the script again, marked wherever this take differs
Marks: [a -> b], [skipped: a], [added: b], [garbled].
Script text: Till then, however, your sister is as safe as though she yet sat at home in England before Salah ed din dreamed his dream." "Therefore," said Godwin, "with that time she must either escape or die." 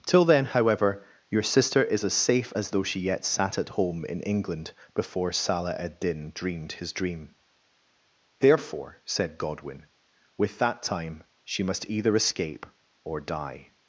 Till then, however, your sister is as safe as though she yet sat at home in England before Salah ed din dreamed his dream." "Therefore," said Godwin, "with that time she must either escape or die."